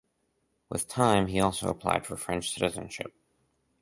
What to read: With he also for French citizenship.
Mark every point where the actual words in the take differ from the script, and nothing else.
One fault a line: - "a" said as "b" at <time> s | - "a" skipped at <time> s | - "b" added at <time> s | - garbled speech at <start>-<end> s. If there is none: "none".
- "time" added at 0.9 s
- "applied" added at 1.7 s